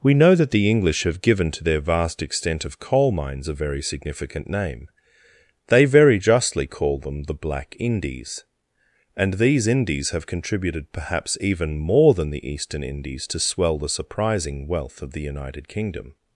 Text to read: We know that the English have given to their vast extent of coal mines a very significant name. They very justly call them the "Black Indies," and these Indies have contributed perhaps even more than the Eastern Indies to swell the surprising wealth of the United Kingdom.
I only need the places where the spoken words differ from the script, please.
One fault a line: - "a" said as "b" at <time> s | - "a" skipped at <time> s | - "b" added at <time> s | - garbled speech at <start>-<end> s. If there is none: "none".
none